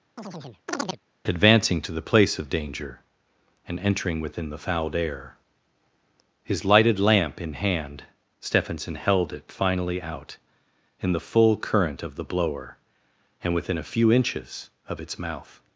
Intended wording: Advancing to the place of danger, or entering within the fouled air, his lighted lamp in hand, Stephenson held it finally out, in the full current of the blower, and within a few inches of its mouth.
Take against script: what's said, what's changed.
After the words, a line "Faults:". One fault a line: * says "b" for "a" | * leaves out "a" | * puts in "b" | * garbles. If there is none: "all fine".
Advancing to the place of danger, and entering within the fouled air, his lighted lamp in hand, Stephenson held it finally out, in the full current of the blower, and within a few inches of its mouth.
Faults:
* says "and" for "or"